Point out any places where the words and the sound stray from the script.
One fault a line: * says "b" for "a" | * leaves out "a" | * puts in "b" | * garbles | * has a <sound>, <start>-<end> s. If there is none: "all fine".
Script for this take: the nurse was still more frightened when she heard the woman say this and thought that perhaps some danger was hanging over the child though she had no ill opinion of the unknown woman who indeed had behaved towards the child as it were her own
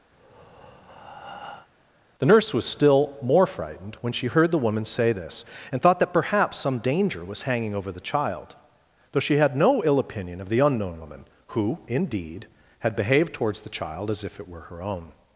* has a breath, 0.1-1.7 s
* puts in "if"